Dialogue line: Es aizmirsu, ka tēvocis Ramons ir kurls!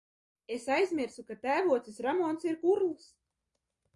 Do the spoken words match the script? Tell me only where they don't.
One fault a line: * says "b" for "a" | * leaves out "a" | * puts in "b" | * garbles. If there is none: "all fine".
all fine